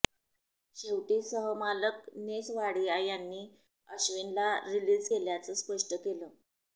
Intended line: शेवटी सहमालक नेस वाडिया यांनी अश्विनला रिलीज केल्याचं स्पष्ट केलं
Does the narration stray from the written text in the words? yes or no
no